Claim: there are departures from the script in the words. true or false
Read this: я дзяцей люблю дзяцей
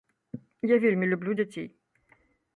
true